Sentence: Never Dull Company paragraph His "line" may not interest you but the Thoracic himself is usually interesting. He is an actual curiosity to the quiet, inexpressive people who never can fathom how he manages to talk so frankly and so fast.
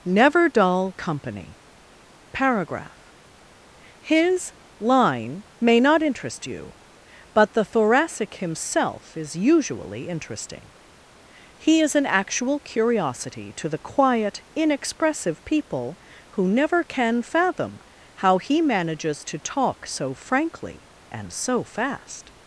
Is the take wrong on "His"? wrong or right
right